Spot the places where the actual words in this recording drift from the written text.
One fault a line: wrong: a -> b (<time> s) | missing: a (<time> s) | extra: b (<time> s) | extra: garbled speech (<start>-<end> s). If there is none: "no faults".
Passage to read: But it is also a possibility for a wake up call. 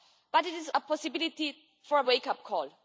missing: also (0.7 s)